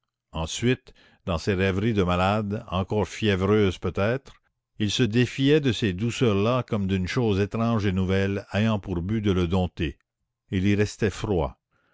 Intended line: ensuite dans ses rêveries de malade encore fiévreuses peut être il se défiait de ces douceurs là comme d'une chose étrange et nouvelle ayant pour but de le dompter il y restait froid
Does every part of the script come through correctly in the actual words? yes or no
yes